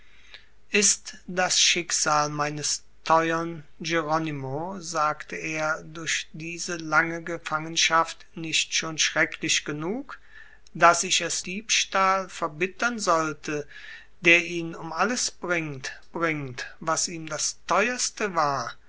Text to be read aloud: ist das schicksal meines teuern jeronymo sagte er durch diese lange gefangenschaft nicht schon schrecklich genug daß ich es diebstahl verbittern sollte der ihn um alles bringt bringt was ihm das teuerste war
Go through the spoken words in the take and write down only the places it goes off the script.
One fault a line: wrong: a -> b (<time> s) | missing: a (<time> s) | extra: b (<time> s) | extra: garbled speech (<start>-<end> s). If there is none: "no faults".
no faults